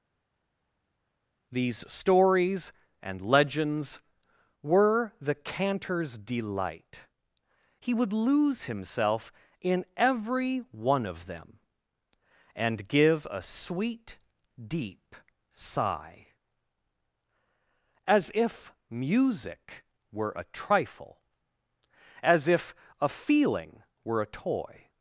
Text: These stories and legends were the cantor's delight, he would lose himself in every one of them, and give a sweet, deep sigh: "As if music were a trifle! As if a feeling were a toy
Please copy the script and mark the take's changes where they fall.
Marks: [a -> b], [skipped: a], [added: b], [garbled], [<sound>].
These stories and legends were the cantor's delight, he would lose himself in every one of them, and give a sweet, deep sigh: "As if music were a trifle! As if a feeling were a toy